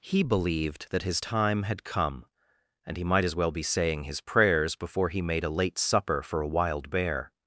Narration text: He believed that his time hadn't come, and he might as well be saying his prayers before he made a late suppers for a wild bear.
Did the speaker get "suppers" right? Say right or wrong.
wrong